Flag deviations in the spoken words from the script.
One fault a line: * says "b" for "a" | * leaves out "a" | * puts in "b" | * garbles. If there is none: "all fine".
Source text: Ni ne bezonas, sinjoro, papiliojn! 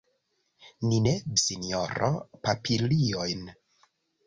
* leaves out "bezonas"